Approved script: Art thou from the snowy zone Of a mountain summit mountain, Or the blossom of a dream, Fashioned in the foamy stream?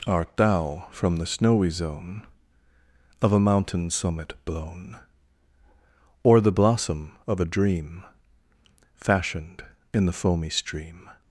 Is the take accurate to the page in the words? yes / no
no